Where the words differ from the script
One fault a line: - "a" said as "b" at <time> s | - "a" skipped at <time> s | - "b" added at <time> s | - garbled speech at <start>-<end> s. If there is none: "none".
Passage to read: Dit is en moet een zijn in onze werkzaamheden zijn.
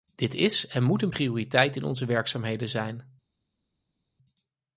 - "zijn" said as "prioriteit" at 1.1 s